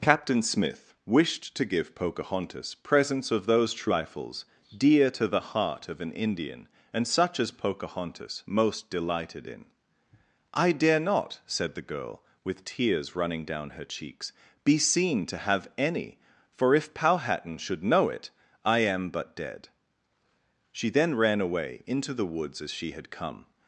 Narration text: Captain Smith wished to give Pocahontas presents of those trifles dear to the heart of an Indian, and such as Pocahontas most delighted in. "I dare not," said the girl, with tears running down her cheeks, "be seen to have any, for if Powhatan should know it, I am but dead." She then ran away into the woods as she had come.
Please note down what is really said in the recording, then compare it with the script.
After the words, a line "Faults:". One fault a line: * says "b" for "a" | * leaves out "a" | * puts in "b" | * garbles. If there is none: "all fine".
Captain Smith wished to give Pocahontas presents of those trifles dear to the heart of an Indian, and such as Pocahontas most delighted in. "I dare not," said the girl, with tears running down her cheeks, "be seen to have any, for if Powhatan should know it, I am but dead." She then ran away into the woods as she had come.
Faults:
all fine